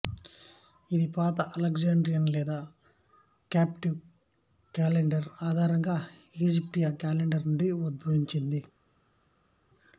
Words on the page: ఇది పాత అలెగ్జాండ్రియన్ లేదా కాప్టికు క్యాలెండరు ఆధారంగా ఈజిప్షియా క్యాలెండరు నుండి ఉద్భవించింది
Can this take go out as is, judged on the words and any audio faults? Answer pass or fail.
pass